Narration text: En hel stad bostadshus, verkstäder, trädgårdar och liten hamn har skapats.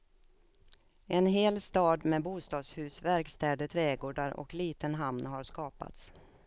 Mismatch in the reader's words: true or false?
true